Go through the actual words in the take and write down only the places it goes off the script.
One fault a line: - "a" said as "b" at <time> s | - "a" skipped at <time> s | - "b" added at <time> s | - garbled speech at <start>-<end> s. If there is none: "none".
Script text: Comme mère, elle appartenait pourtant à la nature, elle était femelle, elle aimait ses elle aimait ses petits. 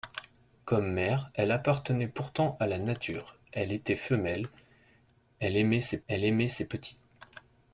none